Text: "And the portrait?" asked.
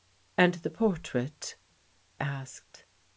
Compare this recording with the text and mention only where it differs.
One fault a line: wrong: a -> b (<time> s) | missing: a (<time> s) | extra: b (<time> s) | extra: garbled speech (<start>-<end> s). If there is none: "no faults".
no faults